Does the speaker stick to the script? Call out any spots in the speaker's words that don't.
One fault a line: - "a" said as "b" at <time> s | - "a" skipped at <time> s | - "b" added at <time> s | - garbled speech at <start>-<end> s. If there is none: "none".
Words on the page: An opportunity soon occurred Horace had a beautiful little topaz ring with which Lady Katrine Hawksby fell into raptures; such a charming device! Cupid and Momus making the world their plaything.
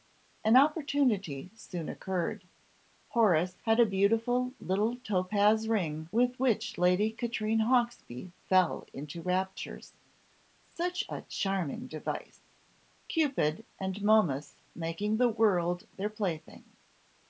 none